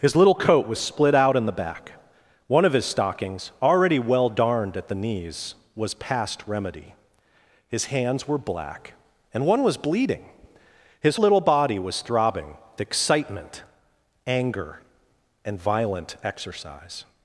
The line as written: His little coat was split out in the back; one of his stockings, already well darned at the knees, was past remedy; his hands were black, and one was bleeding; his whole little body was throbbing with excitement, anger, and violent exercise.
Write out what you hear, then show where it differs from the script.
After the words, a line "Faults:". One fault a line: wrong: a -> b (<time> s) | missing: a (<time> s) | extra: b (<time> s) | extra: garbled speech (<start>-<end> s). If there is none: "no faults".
His little coat was split out in the back; one of his stockings, already well darned at the knees, was past remedy; his hands were black, and one was bleeding; his little body was throbbing excitement, anger, and violent exercise.
Faults:
missing: whole (11.2 s)
missing: with (12.6 s)